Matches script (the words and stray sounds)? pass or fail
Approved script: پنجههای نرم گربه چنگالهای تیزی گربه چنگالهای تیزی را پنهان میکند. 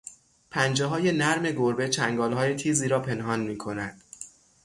fail